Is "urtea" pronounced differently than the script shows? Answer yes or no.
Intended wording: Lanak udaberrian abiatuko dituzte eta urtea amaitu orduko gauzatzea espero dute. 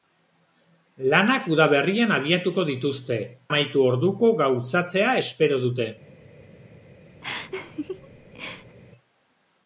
yes